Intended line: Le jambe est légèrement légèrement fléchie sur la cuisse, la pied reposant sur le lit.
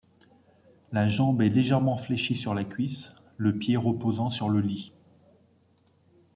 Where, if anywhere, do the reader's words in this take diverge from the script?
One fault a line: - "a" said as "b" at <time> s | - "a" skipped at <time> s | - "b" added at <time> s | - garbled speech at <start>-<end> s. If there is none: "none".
- "Le" said as "La" at 0.9 s
- "légèrement" skipped at 1.9 s
- "la" said as "le" at 3.4 s